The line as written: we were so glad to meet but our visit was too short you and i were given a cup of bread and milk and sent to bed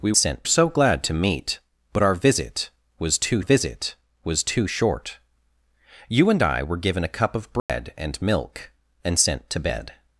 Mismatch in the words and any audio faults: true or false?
true